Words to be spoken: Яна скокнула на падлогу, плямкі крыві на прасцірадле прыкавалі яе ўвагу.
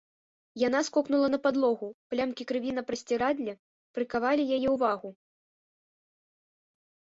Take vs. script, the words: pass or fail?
pass